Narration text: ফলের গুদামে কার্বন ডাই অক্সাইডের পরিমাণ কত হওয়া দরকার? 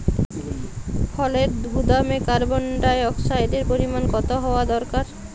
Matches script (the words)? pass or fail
pass